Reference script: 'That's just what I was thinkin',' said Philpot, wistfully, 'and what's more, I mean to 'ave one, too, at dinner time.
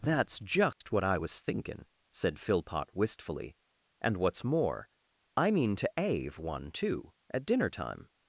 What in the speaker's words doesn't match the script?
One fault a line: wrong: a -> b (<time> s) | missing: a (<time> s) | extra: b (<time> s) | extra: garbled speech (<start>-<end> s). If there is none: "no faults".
no faults